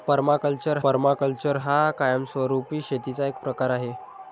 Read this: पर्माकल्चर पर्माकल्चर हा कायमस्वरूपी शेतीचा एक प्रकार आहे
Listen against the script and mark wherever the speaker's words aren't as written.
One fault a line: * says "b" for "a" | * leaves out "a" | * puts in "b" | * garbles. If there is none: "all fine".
all fine